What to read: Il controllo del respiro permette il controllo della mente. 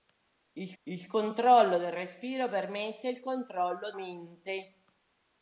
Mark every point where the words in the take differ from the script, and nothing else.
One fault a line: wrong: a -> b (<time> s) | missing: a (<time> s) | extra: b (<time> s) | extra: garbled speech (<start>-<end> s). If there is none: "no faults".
extra: il (0.8 s)
missing: della (3.9 s)